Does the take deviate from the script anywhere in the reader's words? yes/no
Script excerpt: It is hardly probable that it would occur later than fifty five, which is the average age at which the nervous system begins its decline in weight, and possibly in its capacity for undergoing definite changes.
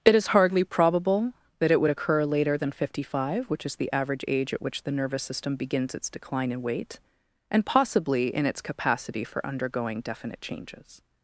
no